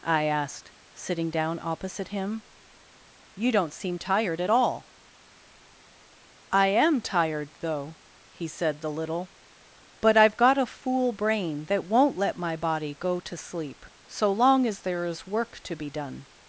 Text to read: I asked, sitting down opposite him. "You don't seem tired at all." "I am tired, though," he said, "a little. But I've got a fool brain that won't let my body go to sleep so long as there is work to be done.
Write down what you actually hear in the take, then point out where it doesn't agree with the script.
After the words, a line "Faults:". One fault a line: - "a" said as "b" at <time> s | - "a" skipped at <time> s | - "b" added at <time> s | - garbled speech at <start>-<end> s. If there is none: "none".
I asked, sitting down opposite him. "You don't seem tired at all." "I am tired, though," he said, "the little. But I've got a fool brain that won't let my body go to sleep so long as there is work to be done.
Faults:
- "a" said as "the" at 8.8 s